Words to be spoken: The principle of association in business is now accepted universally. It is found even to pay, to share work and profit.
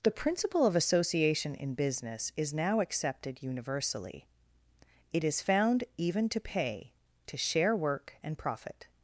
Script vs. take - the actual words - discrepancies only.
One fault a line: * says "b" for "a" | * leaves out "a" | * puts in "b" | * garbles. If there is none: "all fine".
all fine